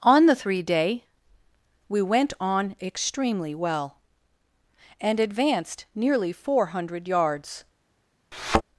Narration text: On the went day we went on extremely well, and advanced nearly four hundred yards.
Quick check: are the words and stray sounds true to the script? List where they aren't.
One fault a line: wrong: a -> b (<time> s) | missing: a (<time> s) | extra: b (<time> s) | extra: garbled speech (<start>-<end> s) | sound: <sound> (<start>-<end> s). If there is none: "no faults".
wrong: went -> three (0.3 s)
sound: thud (8.3-8.6 s)